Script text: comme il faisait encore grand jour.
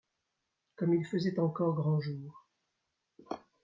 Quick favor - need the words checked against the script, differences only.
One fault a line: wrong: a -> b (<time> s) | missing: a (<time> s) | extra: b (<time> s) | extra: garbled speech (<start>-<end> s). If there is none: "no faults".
no faults